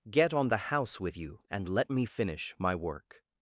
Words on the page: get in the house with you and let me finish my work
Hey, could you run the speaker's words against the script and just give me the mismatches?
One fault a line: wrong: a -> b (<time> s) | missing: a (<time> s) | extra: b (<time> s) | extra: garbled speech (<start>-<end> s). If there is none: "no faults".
wrong: in -> on (0.3 s)